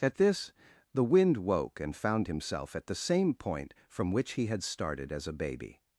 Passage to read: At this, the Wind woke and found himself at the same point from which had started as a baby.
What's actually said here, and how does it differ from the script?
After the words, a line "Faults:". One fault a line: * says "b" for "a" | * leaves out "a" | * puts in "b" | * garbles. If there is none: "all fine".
At this, the Wind woke and found himself at the same point from which he had started as a baby.
Faults:
* puts in "he"